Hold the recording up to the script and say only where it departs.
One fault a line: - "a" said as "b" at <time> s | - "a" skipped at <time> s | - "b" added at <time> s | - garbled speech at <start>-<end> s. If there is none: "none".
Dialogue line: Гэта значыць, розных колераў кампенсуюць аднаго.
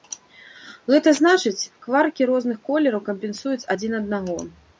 - "кваркі" added at 1.9 s
- "адзін" added at 3.8 s